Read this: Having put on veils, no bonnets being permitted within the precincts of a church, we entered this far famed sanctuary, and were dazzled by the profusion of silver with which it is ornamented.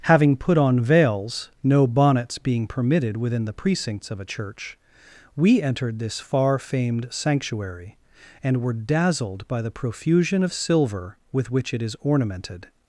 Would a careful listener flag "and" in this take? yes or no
no